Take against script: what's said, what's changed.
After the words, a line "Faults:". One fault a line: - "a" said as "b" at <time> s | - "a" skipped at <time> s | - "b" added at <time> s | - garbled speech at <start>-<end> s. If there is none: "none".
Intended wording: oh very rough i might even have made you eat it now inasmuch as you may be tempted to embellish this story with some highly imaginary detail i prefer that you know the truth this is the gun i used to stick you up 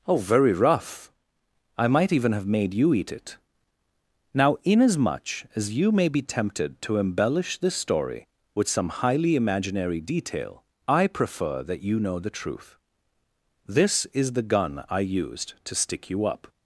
oh very rough i might even have made you eat it now inasmuch as you may be tempted to embellish this story with some highly imaginary detail i prefer that you know the truth this is the gun i used to stick you up
Faults:
none